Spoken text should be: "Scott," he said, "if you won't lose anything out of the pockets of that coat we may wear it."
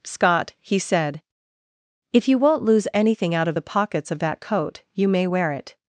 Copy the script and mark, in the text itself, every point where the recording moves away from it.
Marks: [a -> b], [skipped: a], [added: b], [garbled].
"Scott," he said, "if you won't lose anything out of the pockets of that coat [we -> you] may wear it."